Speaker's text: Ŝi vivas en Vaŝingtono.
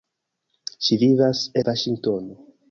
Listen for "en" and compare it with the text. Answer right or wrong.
wrong